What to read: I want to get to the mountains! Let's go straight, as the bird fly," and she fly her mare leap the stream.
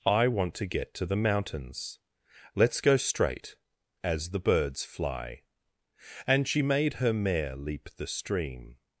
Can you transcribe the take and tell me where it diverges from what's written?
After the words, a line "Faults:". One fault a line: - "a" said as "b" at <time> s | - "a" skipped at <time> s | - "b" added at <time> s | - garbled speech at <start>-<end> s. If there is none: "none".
I want to get to the mountains! Let's go straight, as the birds fly," and she made her mare leap the stream.
Faults:
- "bird" said as "birds" at 4.4 s
- "fly" said as "made" at 6.6 s